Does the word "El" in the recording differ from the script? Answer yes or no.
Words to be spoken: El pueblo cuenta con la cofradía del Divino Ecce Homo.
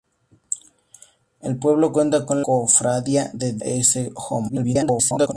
no